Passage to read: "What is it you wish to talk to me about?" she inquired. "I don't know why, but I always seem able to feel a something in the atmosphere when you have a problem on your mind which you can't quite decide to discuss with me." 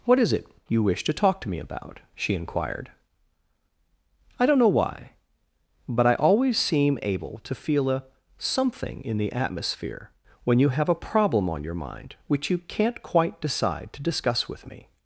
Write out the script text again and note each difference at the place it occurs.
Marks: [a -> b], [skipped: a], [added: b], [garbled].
"What is it you wish to talk to me about?" she inquired. "I don't know why, but I always seem able to feel a something in the atmosphere when you have a problem on your mind which you can't quite decide to discuss with me."